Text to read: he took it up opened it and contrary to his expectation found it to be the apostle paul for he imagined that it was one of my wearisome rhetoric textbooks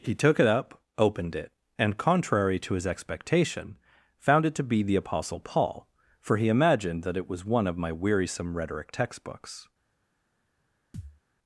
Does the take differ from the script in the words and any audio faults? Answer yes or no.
yes